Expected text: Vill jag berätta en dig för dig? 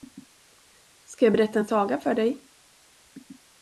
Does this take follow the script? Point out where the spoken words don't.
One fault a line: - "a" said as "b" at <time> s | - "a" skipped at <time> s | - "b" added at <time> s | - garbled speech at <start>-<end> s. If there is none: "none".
- "Vill" said as "Ska" at 1.0 s
- "dig" said as "saga" at 1.6 s